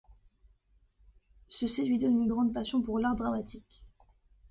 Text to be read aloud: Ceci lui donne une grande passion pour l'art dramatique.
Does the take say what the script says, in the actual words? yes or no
yes